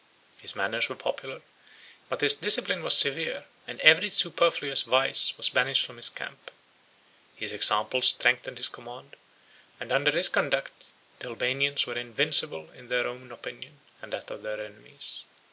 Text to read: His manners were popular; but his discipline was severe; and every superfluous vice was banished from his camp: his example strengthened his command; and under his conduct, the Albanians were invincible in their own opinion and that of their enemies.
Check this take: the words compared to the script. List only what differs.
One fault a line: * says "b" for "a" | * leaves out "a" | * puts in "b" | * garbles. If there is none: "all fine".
all fine